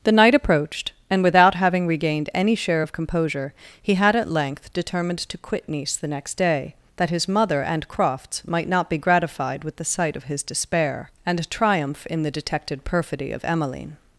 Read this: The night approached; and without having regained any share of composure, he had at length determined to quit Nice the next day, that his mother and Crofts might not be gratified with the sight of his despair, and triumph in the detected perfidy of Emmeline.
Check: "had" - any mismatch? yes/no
no